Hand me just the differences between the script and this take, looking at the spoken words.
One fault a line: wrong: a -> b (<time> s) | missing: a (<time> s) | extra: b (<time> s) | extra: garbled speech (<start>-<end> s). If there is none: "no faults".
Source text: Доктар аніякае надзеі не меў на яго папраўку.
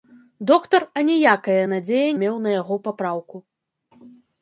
missing: не (2.1 s)